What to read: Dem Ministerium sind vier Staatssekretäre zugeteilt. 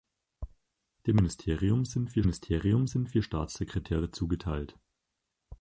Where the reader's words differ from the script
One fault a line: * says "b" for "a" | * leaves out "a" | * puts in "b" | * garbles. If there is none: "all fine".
* puts in "Ministerium sind vier"